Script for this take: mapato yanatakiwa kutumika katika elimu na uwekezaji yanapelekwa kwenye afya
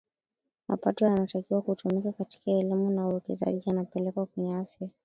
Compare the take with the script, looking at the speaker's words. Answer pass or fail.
pass